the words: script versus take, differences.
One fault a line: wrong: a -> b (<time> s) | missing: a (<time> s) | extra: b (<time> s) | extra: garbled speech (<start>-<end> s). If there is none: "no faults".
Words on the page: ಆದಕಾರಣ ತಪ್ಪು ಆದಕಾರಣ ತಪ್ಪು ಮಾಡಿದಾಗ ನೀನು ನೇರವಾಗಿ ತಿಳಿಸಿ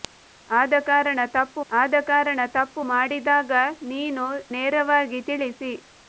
no faults